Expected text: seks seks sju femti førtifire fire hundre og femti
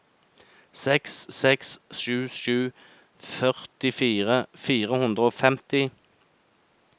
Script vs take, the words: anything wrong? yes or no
yes